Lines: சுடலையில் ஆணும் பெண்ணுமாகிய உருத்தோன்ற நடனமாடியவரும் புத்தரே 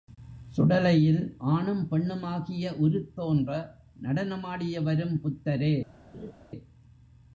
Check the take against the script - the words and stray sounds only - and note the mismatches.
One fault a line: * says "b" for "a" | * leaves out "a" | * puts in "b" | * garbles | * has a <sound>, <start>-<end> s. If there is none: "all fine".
* has a laugh, 6.1-6.3 s